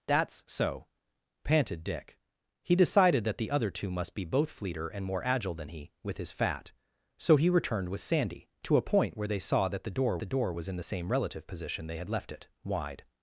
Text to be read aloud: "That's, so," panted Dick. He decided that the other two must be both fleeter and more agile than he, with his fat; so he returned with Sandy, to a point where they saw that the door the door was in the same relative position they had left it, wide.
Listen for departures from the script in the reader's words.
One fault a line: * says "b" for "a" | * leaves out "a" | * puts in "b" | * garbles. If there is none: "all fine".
all fine